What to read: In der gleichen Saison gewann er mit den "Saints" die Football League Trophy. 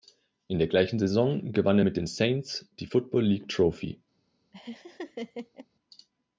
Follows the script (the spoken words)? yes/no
yes